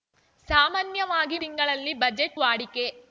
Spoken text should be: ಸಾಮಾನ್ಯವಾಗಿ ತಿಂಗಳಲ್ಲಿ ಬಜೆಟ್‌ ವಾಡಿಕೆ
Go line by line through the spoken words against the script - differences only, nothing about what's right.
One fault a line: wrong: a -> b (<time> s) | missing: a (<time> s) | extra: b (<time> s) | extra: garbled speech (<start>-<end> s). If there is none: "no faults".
no faults